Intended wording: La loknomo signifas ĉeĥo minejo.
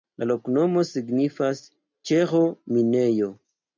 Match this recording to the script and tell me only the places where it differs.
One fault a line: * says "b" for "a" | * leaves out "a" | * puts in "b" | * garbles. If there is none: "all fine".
all fine